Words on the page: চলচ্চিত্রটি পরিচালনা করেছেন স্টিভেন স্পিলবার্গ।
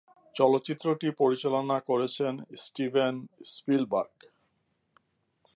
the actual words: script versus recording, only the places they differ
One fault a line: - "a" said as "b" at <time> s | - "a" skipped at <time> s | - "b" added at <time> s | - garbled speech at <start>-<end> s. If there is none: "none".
none